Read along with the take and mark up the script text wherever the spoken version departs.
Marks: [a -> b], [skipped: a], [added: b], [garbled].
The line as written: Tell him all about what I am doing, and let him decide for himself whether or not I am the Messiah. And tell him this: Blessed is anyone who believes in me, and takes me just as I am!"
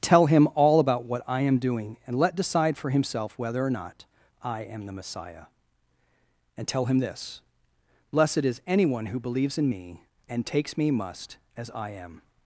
Tell him all about what I am doing, and let [skipped: him] decide for himself whether or not I am the Messiah. And tell him this: Blessed is anyone who believes in me, and takes me [just -> must] as I am!"